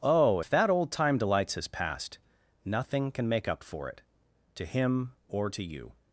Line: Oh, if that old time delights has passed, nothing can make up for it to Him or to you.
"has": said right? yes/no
yes